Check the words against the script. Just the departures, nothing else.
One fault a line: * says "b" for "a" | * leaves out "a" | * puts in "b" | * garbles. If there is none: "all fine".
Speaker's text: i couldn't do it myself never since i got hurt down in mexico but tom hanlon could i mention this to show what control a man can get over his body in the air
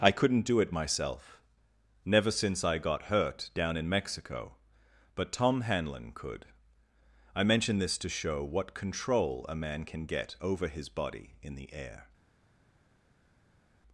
all fine